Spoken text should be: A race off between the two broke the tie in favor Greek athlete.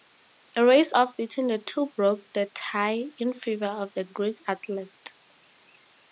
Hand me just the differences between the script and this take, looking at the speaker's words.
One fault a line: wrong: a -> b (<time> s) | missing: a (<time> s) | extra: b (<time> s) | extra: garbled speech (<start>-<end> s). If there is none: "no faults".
extra: of the (3.7 s)